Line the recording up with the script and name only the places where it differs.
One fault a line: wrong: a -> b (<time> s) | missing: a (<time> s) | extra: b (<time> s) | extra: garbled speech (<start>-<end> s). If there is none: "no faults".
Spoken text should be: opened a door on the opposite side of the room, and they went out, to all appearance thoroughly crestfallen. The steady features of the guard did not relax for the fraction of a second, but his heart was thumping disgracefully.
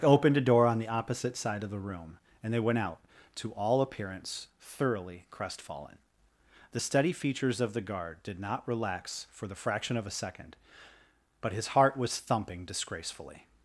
no faults